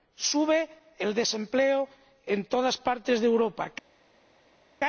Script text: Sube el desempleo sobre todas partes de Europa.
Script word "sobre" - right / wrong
wrong